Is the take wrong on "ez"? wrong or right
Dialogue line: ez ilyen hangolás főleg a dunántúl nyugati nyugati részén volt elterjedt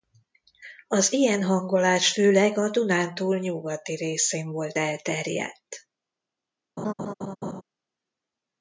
wrong